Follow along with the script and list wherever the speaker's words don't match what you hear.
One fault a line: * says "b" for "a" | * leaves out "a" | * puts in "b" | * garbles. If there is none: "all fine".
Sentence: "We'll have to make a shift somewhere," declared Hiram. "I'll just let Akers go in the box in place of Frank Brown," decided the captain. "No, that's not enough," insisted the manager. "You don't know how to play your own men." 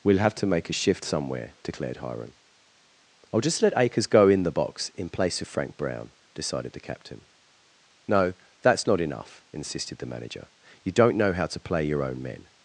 all fine